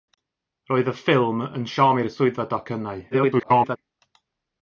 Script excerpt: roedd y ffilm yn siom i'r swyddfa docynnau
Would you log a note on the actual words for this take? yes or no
yes